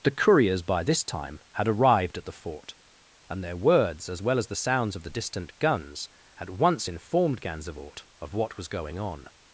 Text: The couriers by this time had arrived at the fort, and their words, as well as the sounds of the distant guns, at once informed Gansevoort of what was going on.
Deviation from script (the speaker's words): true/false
false